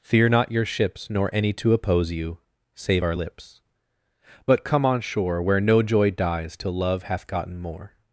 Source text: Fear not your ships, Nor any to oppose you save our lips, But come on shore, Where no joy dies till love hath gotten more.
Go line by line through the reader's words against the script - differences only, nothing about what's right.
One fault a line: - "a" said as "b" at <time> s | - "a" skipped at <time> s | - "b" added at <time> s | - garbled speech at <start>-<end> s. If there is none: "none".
none